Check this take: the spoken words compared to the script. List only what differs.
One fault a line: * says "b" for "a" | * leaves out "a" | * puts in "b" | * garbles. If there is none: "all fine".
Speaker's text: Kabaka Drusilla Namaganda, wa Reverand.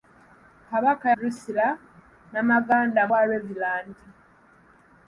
all fine